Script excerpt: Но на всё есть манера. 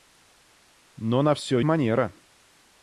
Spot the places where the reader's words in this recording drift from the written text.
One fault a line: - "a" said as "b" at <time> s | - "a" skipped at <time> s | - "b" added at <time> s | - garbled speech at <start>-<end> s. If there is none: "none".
- "есть" skipped at 1.6 s